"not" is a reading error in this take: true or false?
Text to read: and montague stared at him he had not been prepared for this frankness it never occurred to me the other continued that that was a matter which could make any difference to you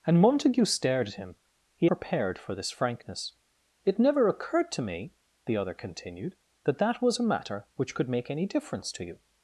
true